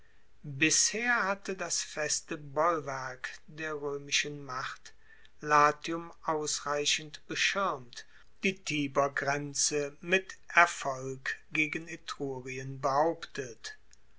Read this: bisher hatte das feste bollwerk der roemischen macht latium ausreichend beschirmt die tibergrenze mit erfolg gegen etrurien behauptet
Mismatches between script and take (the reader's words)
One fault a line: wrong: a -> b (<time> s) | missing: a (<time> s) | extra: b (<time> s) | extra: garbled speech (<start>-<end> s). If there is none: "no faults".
no faults